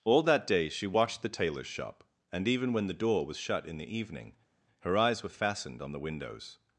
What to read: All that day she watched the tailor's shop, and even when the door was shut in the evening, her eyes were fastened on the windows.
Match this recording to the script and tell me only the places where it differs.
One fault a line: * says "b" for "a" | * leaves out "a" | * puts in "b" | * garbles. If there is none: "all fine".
all fine